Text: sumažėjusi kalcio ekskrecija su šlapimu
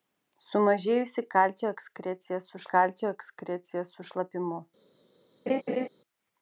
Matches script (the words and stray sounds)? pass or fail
fail